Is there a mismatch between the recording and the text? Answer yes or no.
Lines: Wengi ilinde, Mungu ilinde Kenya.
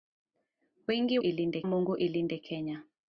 no